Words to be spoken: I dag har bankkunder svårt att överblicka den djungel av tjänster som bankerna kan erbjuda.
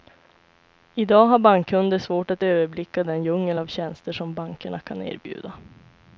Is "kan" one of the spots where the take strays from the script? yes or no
no